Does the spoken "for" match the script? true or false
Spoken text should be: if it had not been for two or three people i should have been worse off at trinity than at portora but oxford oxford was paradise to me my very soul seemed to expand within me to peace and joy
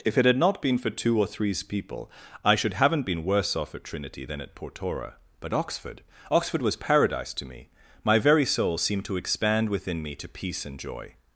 true